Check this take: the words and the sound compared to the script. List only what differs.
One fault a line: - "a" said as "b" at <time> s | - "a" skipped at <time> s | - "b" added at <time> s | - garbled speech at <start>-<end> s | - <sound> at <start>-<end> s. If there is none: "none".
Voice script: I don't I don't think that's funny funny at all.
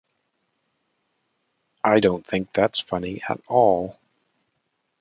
- "I don't" skipped at 2.2 s
- "funny" skipped at 3.2 s